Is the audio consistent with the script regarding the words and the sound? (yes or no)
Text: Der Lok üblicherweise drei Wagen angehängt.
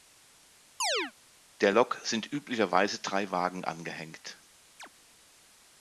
no